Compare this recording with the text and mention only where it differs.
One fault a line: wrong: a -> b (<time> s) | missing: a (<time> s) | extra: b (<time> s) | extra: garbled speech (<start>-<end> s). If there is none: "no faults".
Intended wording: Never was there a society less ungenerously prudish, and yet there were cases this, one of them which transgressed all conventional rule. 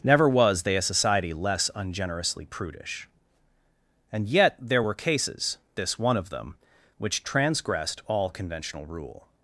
wrong: there -> they (0.6 s)